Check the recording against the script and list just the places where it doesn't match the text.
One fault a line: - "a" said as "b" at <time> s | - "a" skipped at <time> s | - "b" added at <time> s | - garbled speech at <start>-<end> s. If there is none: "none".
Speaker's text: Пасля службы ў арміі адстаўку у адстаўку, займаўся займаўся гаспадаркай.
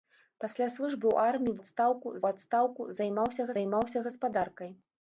none